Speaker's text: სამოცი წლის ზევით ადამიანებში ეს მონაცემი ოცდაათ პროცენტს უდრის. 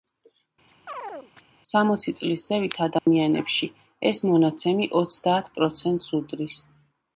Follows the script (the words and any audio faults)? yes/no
no